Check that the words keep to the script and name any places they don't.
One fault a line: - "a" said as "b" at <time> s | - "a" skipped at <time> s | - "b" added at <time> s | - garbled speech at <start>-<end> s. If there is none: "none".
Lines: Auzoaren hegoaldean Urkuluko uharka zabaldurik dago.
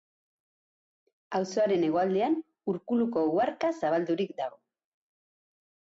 none